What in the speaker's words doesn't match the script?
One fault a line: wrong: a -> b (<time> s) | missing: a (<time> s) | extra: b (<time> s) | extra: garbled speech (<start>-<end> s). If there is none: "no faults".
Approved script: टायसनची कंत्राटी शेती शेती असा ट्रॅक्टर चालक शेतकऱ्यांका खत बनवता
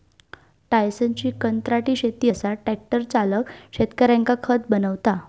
missing: शेती (2.3 s)